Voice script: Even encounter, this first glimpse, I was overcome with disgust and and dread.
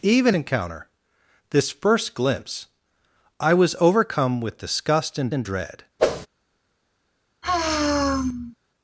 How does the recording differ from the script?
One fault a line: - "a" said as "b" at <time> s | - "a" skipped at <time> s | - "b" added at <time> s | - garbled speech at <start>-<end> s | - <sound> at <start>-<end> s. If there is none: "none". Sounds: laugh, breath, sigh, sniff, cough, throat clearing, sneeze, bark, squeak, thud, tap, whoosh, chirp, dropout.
- whoosh at 6.0-6.3 s
- sigh at 7.4-8.6 s